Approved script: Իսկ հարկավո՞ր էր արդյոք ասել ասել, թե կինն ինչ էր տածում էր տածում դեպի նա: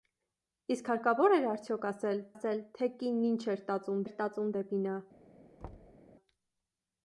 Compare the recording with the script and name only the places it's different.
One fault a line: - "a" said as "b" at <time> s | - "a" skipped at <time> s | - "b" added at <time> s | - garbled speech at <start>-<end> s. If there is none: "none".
none